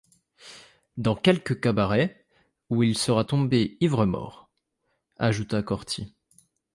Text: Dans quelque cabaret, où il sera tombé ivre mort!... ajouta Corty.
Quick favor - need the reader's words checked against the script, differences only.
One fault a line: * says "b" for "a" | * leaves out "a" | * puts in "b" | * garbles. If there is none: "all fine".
all fine